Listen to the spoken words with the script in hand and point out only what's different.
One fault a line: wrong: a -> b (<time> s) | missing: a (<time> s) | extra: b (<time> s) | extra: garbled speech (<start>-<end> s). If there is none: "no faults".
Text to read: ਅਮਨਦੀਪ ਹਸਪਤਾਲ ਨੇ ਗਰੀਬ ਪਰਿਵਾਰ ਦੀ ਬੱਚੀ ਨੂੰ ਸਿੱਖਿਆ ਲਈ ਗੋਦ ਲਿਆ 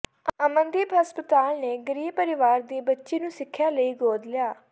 no faults